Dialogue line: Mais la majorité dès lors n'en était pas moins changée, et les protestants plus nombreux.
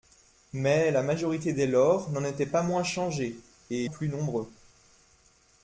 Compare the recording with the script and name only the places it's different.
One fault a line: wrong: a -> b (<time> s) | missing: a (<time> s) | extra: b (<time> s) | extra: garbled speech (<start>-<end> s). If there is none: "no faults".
missing: les protestants (3.9 s)